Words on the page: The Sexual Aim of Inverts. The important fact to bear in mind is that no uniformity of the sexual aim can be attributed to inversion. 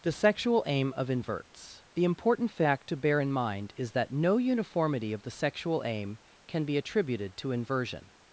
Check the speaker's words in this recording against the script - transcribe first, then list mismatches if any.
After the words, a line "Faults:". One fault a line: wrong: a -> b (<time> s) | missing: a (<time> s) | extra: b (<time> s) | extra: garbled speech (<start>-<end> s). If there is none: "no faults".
The Sexual Aim of Inverts. The important fact to bear in mind is that no uniformity of the sexual aim can be attributed to inversion.
Faults:
no faults